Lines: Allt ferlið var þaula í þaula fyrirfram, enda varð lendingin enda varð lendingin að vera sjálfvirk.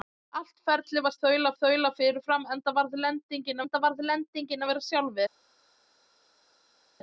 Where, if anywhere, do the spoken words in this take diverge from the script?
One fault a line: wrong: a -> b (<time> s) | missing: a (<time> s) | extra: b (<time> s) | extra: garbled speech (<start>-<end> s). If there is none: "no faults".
no faults